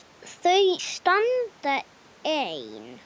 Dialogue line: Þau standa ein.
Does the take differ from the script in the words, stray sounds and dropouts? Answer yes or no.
no